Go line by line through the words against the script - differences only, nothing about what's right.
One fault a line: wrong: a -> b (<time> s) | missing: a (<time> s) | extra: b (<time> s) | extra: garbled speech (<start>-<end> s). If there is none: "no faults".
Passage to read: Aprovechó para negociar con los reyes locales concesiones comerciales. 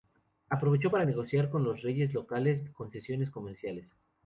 no faults